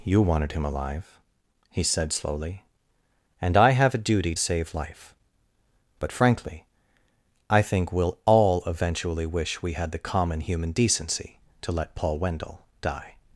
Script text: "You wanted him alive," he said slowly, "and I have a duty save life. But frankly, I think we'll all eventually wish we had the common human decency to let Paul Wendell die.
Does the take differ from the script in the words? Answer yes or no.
no